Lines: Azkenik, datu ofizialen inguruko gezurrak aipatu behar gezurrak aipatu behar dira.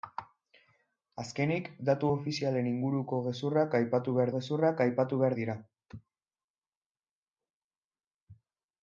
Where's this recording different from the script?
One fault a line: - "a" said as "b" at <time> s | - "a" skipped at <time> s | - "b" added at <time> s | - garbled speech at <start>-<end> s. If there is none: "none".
none